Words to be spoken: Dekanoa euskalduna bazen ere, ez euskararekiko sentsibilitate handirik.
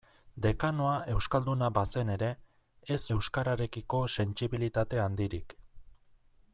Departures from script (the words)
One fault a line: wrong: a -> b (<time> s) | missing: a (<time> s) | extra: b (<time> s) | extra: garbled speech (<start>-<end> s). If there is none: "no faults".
no faults